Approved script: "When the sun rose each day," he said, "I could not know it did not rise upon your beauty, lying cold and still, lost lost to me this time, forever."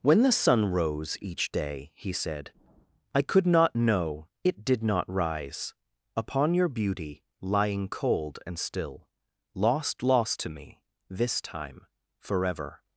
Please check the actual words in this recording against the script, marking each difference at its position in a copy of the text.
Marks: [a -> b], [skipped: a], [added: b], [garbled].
"When the sun rose each day," he said, "I could not know it did not rise upon your beauty, lying cold and still, lost lost to me this time, forever."